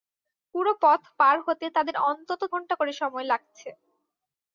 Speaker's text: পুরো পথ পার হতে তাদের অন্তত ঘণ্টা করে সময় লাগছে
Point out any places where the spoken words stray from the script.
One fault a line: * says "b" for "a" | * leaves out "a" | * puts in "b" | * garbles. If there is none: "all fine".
all fine